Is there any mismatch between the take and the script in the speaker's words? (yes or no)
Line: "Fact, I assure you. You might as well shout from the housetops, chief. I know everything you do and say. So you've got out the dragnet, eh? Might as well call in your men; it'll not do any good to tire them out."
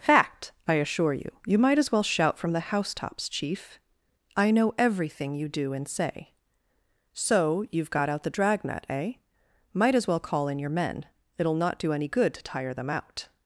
no